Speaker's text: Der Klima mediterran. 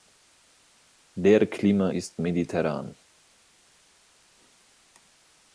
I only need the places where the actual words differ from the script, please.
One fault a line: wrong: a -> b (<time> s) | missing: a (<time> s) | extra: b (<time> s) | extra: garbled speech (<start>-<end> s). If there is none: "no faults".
extra: ist (1.9 s)